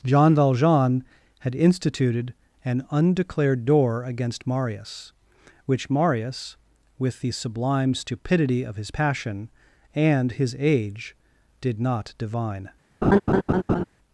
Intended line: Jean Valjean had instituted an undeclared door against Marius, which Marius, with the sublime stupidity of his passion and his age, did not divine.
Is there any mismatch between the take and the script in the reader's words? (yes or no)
no